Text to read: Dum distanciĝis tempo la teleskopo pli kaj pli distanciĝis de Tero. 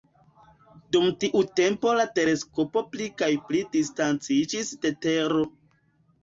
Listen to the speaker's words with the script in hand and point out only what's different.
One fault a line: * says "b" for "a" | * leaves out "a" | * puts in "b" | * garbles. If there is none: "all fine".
* says "tiu" for "distanciĝis"